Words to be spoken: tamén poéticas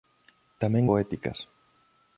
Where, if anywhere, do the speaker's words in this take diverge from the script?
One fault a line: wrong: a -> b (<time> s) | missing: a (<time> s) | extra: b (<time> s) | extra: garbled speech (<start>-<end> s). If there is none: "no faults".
no faults